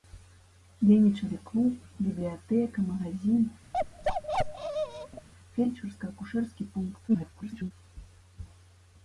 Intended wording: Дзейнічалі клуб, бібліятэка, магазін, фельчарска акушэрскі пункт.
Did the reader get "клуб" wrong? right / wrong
right